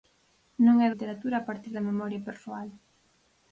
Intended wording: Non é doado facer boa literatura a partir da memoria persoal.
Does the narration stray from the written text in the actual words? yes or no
yes